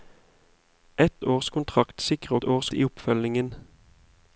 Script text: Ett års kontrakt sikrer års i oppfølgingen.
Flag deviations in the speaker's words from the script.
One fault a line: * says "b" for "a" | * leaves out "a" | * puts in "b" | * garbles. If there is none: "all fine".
all fine